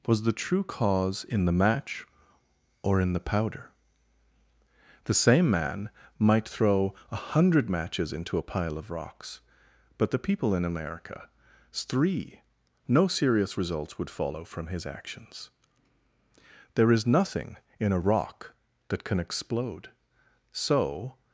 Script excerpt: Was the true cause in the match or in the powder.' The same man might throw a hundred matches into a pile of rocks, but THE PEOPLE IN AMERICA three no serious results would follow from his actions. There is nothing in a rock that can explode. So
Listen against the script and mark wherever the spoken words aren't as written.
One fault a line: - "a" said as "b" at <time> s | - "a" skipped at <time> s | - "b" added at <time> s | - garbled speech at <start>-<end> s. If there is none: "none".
none